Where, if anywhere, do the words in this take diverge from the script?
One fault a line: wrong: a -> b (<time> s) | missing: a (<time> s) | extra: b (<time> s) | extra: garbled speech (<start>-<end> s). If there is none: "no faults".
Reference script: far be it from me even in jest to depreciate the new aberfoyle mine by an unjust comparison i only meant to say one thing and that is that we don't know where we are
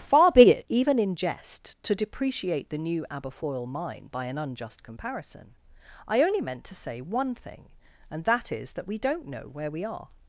missing: from me (0.7 s)